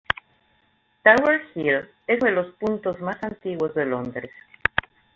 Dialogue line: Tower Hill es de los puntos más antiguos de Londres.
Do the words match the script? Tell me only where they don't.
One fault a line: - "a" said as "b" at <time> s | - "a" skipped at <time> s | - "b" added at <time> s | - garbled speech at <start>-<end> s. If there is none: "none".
none